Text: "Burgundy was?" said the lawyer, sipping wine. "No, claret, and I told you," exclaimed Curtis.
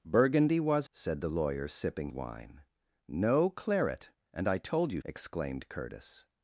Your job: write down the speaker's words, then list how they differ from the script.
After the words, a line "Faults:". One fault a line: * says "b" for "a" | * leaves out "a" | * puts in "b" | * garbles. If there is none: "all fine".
"Burgundy was?" said the lawyer, sipping wine. "No, claret, and I told you," exclaimed Curtis.
Faults:
all fine